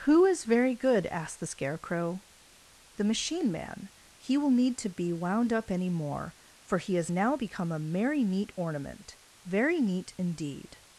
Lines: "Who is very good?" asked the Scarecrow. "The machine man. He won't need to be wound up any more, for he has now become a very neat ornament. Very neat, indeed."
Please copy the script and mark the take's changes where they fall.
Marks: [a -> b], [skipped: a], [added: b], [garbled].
"Who is very good?" asked the Scarecrow. "The machine man. He [won't -> will] need to be wound up any more, for he has now become a [very -> merry] neat ornament. Very neat, indeed."